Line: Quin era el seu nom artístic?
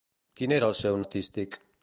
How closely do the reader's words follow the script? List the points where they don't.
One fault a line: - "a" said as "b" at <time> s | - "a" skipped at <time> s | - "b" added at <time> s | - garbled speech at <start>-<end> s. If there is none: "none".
- "nom" skipped at 1.0 s